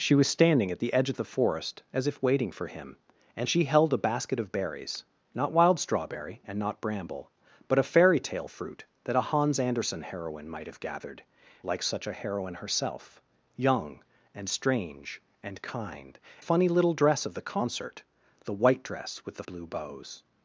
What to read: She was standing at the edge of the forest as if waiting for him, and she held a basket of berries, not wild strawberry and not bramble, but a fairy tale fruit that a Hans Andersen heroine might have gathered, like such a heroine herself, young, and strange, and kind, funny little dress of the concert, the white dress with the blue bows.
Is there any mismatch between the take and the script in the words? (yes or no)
no